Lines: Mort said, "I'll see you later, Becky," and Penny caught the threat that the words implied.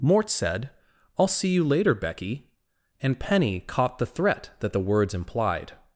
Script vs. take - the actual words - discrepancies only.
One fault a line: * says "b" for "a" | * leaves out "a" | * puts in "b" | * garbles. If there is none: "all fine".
all fine